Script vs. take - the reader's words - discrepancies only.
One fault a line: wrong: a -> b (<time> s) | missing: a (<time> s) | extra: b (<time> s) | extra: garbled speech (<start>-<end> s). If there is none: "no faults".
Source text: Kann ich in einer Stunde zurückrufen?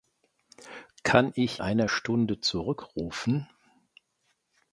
missing: in (1.6 s)